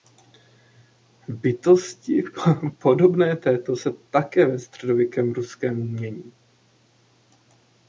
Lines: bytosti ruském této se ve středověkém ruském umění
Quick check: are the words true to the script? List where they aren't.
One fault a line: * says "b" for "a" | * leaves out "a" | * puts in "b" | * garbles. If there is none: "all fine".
* says "podobné" for "ruském"
* puts in "také"